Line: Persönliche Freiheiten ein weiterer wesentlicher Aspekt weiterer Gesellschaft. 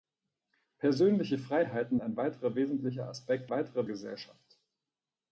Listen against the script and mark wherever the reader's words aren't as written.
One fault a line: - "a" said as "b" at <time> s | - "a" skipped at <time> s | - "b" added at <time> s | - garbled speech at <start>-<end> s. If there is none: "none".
none